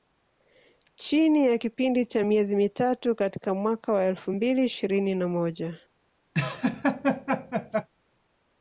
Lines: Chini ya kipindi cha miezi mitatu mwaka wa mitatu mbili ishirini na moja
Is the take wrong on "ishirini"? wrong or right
right